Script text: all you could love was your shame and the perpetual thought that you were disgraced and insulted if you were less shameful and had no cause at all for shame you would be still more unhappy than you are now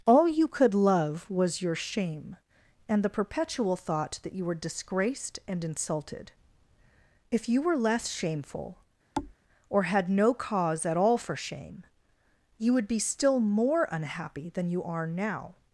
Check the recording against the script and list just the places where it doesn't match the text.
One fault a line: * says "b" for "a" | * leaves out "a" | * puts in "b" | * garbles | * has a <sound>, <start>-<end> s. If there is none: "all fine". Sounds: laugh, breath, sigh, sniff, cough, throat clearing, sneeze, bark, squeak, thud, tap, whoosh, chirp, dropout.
* has a thud, 9.2-9.4 s
* says "or" for "and"